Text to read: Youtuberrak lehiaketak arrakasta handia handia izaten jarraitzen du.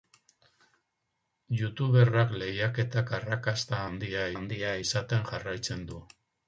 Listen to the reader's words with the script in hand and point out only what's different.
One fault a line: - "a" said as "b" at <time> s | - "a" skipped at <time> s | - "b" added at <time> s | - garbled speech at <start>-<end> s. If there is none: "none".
none